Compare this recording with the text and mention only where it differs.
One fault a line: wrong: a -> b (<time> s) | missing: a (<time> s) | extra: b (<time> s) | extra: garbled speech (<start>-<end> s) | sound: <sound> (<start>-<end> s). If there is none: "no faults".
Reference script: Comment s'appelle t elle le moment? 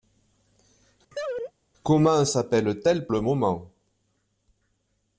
sound: laugh (1.1-1.5 s)